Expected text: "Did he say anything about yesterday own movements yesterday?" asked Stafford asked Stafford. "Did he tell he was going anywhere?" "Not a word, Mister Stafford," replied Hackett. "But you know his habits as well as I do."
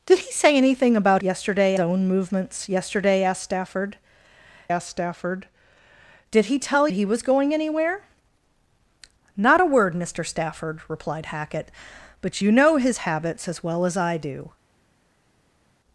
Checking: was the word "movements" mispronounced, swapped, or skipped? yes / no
no